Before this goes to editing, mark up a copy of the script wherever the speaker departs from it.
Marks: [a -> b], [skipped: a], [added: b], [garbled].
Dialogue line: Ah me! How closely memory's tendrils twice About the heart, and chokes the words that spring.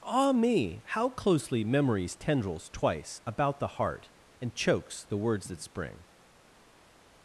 Ah me! How closely memory's tendrils twice About the heart, and chokes the words that spring.